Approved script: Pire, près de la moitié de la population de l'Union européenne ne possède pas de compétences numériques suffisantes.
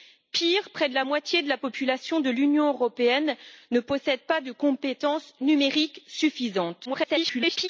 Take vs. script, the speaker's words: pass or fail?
fail